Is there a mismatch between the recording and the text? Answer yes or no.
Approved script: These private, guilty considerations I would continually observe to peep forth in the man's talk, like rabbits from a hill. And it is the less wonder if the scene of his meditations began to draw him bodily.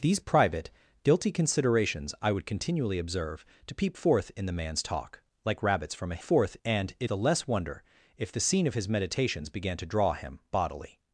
yes